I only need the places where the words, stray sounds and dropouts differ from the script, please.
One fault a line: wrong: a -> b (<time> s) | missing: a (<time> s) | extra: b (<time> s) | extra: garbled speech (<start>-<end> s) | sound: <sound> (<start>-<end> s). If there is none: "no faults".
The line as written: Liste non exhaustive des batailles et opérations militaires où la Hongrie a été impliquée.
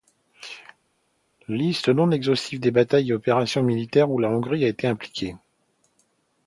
no faults